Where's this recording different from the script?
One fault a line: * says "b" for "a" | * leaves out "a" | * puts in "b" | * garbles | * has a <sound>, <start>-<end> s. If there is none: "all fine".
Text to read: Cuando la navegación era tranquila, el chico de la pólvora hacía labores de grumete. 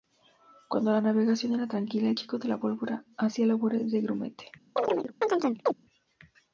* has a chirp, 4.8-5.7 s